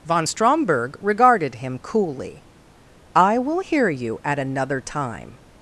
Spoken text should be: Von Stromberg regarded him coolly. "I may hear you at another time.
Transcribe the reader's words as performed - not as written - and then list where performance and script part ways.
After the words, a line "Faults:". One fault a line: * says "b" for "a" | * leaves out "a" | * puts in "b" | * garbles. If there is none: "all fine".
Von Stromberg regarded him coolly. "I will hear you at another time.
Faults:
* says "will" for "may"